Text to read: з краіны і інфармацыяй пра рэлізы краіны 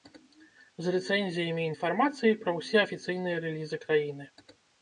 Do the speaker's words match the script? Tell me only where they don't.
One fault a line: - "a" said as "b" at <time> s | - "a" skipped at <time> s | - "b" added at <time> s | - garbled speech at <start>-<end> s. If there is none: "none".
- "краіны" said as "рэцэнзіямі" at 0.9 s
- "ўсе афіцыйныя" added at 2.6 s